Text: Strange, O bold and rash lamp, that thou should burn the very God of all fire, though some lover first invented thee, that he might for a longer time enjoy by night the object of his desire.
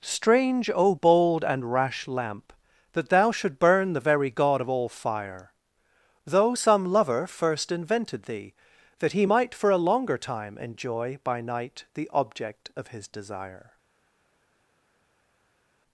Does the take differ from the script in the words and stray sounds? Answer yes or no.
no